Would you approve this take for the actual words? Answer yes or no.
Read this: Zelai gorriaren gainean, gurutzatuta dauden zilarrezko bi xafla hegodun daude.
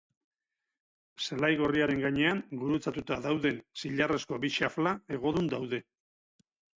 yes